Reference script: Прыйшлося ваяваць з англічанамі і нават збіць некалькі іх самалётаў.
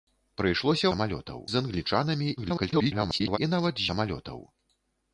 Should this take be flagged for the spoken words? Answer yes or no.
yes